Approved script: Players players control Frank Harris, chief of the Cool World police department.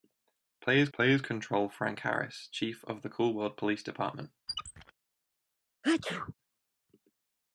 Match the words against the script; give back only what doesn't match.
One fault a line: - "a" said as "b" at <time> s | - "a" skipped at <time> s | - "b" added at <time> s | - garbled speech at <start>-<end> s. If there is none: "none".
none